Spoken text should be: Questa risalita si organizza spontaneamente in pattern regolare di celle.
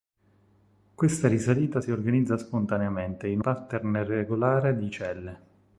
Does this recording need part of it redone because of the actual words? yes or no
no